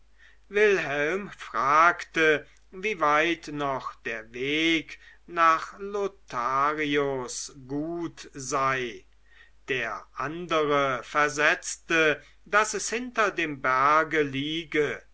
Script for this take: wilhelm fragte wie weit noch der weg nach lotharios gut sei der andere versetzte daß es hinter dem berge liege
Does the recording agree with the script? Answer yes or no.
yes